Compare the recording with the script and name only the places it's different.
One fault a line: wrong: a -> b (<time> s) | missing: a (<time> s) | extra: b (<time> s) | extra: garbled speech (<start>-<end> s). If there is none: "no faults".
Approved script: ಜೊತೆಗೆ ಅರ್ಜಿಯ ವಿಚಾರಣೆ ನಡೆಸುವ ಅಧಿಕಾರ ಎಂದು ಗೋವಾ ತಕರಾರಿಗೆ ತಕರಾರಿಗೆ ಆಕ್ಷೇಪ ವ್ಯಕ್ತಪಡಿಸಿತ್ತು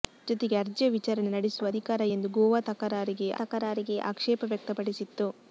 no faults